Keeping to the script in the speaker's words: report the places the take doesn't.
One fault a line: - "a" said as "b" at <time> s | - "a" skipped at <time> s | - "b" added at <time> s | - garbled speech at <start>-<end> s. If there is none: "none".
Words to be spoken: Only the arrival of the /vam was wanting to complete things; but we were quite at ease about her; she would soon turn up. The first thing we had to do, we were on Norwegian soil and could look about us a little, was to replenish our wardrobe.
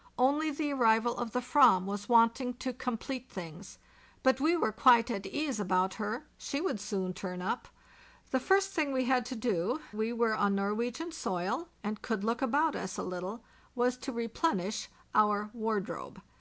none